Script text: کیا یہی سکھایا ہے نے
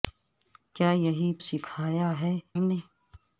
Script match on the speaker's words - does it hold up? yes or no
yes